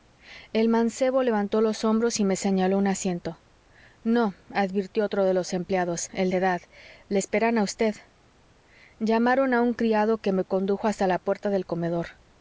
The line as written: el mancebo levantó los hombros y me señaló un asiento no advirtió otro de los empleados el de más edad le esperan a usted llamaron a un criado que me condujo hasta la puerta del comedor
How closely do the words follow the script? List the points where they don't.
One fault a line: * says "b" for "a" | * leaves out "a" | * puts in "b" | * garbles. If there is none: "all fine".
* leaves out "de más"